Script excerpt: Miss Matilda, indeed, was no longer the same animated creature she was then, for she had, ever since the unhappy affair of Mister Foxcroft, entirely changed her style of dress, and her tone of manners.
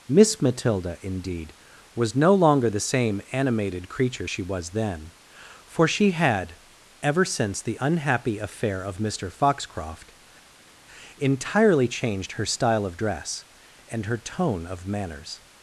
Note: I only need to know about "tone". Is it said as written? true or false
true